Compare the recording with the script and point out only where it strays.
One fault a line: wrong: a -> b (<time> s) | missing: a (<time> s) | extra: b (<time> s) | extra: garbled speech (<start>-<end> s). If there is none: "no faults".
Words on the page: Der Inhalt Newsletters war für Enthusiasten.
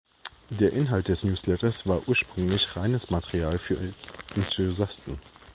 extra: des (1.1 s)
extra: ursprünglich reines Material (2.1 s)